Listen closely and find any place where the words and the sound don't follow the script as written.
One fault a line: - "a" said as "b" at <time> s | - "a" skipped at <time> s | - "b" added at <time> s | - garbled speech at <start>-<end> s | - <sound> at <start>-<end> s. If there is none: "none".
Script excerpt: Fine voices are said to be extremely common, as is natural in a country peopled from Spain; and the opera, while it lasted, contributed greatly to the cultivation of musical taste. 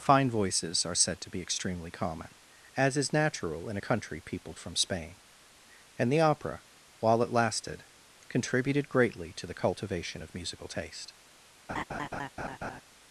- laugh at 11.7-12.8 s